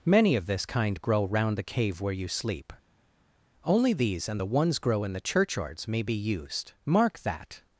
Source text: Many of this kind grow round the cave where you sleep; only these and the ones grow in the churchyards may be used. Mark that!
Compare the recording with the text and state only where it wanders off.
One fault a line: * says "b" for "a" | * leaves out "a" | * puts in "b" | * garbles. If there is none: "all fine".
all fine